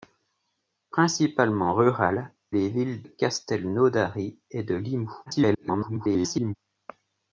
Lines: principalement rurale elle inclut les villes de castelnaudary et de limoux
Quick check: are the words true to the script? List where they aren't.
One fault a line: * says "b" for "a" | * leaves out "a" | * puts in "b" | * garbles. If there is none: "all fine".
* leaves out "elle inclut"
* leaves out "de"
* garbles